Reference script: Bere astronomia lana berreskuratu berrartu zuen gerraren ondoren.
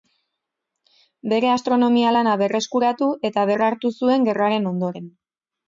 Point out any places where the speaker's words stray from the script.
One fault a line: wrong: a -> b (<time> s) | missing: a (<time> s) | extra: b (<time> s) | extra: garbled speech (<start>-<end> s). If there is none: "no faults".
extra: eta (3.3 s)